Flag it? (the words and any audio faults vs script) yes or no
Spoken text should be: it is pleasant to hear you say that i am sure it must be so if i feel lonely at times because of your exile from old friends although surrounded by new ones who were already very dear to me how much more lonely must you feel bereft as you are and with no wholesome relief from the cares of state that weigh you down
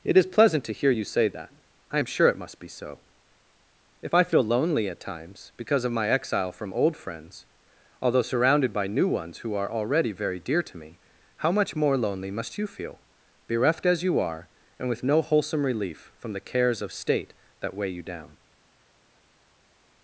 yes